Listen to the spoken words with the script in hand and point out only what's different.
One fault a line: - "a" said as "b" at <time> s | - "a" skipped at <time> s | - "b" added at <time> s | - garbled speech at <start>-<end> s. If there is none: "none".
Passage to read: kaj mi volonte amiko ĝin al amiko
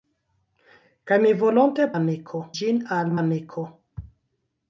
none